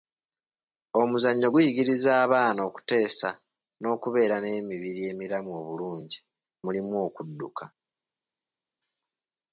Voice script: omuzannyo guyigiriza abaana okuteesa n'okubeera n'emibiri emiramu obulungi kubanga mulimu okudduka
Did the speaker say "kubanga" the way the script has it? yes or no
no